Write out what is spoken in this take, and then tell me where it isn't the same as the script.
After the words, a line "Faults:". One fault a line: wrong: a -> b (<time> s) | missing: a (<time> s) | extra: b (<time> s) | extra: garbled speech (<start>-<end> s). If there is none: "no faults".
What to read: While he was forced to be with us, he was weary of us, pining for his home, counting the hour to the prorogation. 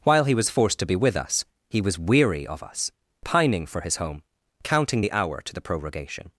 While he was forced to be with us, he was weary of us, pining for his home, counting the hour to the prorogation.
Faults:
no faults